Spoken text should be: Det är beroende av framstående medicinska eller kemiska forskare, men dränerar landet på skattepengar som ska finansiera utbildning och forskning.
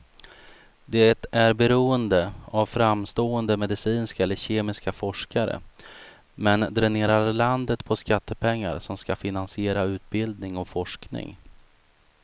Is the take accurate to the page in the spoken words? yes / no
yes